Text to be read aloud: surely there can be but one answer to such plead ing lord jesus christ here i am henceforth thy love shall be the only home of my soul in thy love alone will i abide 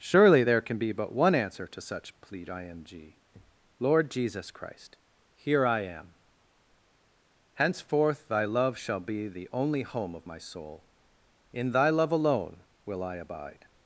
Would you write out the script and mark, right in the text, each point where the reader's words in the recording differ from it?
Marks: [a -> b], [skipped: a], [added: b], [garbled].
surely there can be but one answer to such plead ing lord jesus christ here i am henceforth thy love shall be the only home of my soul in thy love alone will i abide